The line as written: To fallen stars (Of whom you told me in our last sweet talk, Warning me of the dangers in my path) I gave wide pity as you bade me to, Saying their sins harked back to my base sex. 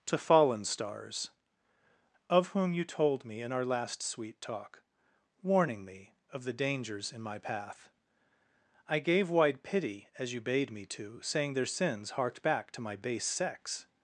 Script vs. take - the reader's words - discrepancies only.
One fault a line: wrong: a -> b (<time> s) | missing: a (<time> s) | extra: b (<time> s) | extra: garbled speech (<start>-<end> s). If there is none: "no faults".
no faults